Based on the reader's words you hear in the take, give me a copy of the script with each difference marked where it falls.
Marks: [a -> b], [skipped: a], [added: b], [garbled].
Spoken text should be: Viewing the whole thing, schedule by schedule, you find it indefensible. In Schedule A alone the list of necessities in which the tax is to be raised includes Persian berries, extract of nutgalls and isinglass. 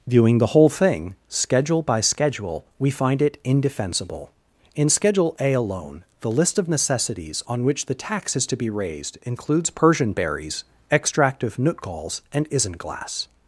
Viewing the whole thing, schedule by schedule, [you -> we] find it indefensible. In Schedule A alone the list of necessities [in -> on] which the tax is to be raised includes Persian berries, extract of nutgalls and isinglass.